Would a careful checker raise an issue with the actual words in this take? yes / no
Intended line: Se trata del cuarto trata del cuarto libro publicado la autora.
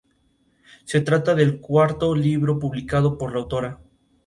yes